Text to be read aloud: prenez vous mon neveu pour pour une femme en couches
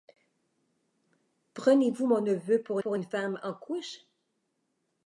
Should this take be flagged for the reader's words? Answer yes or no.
no